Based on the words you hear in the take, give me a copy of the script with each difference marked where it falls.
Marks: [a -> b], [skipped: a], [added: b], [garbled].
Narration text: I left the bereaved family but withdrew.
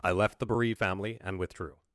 I left the bereaved family [but -> and] withdrew.